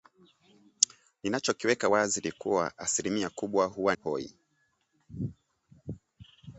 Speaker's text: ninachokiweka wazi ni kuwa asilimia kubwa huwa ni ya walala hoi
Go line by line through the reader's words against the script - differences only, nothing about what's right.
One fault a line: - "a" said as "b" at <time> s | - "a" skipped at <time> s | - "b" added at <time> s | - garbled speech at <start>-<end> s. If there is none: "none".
- "ni ya walala" skipped at 3.9 s